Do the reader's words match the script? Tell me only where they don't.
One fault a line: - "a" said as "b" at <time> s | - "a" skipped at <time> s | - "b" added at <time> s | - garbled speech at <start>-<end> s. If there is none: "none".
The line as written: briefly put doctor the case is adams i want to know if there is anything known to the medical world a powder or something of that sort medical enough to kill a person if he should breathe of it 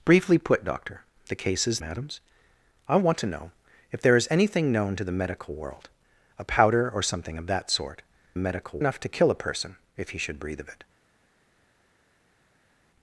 none